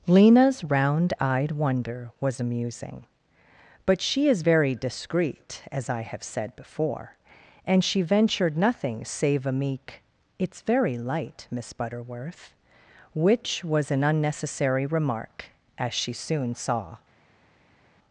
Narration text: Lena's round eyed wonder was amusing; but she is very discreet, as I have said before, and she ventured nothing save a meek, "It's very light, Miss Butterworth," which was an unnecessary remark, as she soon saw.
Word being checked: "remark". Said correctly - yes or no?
yes